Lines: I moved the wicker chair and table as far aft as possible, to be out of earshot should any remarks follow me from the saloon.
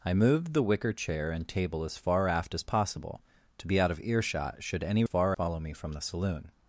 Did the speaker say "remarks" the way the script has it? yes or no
no